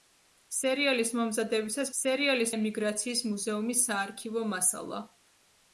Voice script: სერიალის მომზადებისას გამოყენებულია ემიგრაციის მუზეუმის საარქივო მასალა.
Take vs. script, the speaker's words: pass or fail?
fail